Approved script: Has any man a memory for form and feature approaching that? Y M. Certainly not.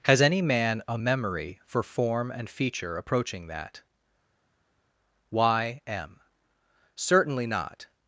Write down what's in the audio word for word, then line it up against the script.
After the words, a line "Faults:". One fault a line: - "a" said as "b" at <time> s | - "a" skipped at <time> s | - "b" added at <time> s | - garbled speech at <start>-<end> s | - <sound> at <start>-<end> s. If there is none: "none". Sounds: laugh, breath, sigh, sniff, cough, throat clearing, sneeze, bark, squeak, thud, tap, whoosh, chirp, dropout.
Has any man a memory for form and feature approaching that? Y M. Certainly not.
Faults:
none